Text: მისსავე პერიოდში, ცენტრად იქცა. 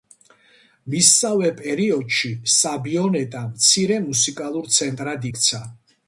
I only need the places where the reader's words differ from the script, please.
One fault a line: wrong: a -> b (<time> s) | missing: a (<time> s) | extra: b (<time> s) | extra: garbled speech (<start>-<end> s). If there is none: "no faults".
extra: საბიონეტა მცირე მუსიკალურ (2.5 s)